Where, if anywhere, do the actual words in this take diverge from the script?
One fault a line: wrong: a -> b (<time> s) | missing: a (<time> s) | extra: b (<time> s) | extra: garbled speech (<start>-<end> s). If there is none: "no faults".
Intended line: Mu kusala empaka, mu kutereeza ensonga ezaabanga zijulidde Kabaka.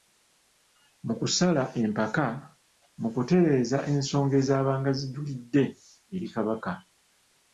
extra: eri (6.1 s)